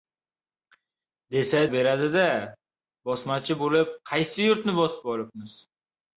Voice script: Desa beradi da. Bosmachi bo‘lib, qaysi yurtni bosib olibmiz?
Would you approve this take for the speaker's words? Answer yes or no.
yes